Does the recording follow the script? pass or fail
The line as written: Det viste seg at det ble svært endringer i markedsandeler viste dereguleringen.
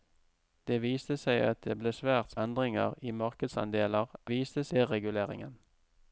pass